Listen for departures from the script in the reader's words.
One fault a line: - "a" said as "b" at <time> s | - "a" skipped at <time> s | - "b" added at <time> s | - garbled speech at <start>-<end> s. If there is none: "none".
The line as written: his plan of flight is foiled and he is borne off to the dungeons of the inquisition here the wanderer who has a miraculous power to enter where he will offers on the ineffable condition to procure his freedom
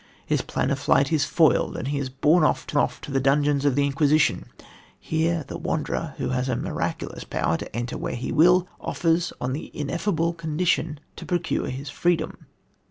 - "off to" added at 2.7 s